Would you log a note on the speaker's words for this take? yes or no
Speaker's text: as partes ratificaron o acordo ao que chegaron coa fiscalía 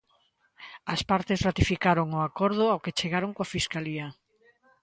no